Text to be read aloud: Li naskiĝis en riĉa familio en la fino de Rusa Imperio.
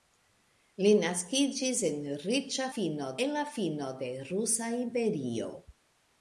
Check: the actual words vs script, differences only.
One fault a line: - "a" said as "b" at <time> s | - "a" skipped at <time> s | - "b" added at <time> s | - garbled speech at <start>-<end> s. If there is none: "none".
- "familio" said as "fino" at 2.8 s